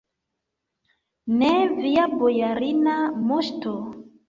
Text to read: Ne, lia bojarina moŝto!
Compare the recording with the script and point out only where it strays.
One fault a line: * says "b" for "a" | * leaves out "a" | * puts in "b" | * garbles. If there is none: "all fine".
* says "via" for "lia"